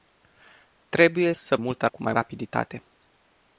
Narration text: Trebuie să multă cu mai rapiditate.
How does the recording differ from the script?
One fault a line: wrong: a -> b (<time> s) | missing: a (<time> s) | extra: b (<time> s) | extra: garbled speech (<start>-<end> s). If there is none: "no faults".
no faults